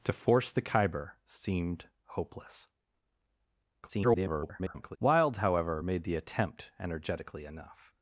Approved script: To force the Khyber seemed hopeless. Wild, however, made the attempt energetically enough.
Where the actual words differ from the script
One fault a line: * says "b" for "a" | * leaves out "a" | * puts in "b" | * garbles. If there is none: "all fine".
* garbles